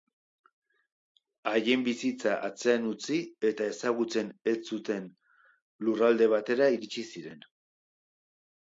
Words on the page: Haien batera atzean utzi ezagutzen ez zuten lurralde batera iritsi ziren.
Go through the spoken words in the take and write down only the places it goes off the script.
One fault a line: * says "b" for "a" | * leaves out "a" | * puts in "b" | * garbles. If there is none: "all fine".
* says "bizitza" for "batera"
* puts in "eta"